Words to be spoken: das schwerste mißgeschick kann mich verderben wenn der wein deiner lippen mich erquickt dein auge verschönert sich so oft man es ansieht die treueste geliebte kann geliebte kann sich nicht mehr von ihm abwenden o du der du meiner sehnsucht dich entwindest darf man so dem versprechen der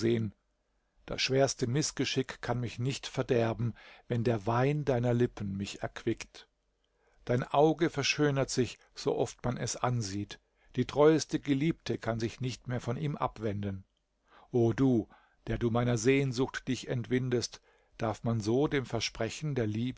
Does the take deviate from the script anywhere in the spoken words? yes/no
yes